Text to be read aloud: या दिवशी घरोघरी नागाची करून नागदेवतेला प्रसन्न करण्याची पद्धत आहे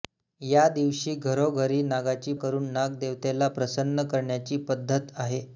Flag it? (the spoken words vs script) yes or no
no